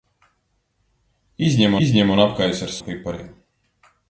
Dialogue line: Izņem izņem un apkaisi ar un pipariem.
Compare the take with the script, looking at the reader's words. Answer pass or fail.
pass